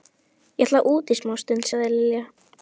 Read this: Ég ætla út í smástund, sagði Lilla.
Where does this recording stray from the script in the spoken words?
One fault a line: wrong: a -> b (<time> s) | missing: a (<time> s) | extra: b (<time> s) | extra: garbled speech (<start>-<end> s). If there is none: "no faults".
no faults